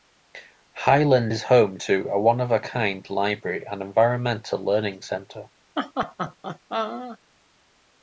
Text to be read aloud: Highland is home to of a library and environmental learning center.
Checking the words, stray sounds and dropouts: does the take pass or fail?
fail